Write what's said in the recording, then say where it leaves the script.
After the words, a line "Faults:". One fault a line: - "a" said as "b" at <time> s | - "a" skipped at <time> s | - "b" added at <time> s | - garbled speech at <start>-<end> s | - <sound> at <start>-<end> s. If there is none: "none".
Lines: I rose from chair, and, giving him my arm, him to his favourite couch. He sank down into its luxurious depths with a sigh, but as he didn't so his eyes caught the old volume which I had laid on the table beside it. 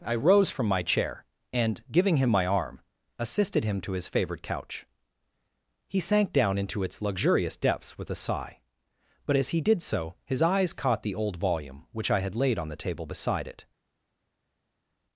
I rose from my chair, and, giving him my arm, assisted him to his favourite couch. He sank down into its luxurious depths with a sigh, but as he did so his eyes caught the old volume which I had laid on the table beside it.
Faults:
- "my" added at 0.7 s
- "assisted" added at 3.2 s
- "didn't" said as "did" at 9.6 s